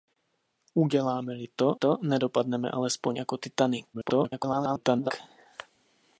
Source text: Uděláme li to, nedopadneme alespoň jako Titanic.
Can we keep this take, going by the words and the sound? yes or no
no